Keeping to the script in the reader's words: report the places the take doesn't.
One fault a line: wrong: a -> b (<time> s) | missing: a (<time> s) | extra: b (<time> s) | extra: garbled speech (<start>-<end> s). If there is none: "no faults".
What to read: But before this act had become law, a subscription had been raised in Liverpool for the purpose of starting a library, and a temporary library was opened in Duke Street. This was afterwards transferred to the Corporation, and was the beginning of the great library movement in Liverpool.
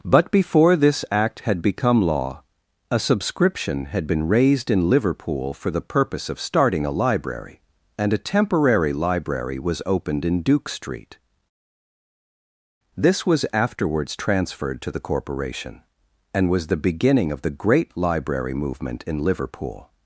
no faults